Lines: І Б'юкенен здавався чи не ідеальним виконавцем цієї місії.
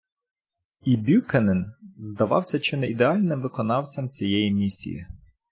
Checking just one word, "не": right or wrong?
right